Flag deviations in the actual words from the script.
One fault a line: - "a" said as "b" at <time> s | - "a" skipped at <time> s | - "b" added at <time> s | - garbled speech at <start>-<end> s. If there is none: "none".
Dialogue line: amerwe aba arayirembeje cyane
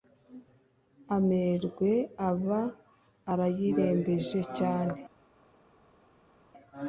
none